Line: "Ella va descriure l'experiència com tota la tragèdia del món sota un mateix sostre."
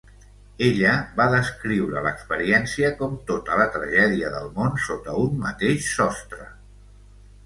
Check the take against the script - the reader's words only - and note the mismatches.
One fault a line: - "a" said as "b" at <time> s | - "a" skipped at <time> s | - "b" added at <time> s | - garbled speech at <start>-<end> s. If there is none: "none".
none